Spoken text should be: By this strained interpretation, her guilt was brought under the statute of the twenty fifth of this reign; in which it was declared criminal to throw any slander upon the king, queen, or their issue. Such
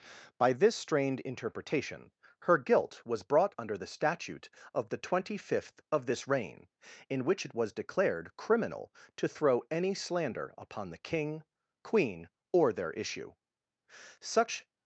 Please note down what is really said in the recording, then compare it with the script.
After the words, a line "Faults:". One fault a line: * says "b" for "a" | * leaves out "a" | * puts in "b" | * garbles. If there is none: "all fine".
By this strained interpretation, her guilt was brought under the statute of the twenty fifth of this reign; in which it was declared criminal to throw any slander upon the king, queen, or their issue. Such
Faults:
all fine